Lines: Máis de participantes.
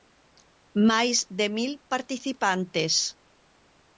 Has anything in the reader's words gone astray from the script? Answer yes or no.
yes